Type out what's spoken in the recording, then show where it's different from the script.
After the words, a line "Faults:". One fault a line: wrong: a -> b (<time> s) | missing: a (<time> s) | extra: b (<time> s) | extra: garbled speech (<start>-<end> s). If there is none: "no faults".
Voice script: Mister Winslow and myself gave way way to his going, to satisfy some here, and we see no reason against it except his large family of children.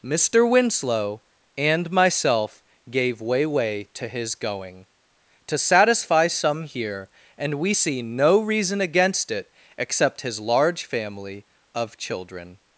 Mister Winslow and myself gave way way to his going, to satisfy some here, and we see no reason against it except his large family of children.
Faults:
no faults